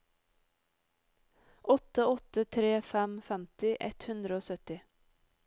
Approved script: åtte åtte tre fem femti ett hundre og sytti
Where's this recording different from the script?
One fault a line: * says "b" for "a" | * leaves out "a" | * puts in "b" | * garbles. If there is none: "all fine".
all fine